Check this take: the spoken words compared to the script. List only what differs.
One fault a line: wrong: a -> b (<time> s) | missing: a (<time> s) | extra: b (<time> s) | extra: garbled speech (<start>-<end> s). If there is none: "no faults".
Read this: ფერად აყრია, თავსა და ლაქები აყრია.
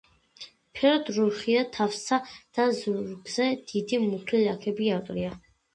wrong: აყრია -> რუხია (1.2 s)
extra: ზურგზე დიდი მუქი (2.8 s)